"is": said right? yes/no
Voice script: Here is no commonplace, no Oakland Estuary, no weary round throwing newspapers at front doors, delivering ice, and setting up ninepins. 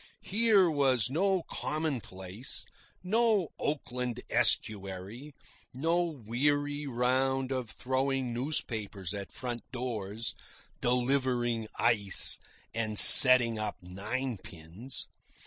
no